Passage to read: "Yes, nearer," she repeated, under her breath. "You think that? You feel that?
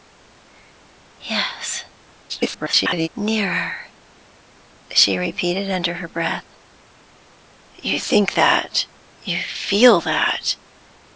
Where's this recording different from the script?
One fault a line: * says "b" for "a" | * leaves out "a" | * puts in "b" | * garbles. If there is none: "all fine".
* garbles